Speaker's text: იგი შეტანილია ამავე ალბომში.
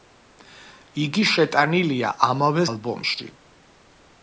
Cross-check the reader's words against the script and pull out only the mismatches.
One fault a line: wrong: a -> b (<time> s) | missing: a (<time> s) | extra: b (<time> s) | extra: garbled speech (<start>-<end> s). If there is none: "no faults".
no faults